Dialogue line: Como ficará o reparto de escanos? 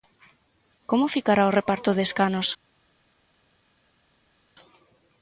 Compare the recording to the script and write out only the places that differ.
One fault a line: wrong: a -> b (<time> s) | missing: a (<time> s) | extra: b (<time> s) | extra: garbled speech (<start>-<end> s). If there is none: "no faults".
no faults